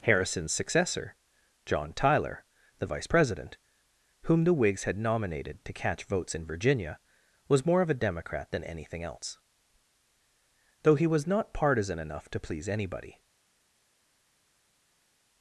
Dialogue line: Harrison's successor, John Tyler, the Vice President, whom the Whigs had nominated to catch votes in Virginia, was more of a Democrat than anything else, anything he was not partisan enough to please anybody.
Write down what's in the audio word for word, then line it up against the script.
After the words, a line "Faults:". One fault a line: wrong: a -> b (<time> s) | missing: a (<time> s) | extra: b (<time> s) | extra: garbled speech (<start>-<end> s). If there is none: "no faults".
Harrison's successor, John Tyler, the Vice President, whom the Whigs had nominated to catch votes in Virginia, was more of a Democrat than anything else, though he was not partisan enough to please anybody.
Faults:
wrong: anything -> though (10.8 s)